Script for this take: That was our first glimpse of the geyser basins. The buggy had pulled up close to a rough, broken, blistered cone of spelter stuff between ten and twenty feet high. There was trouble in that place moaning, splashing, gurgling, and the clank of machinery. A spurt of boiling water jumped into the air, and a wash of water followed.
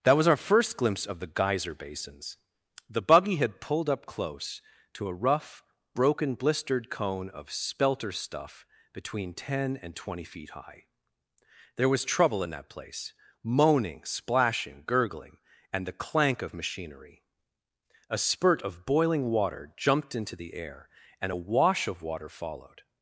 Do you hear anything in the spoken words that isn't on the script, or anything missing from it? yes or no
no